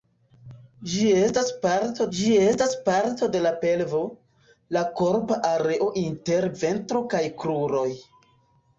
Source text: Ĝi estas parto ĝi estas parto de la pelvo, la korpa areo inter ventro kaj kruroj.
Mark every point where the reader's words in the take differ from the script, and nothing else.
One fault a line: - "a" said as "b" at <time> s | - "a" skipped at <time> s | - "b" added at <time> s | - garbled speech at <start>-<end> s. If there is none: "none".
none